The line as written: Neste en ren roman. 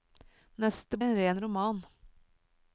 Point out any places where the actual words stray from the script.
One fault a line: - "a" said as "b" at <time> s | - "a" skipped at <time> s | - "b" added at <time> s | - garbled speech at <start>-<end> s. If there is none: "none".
none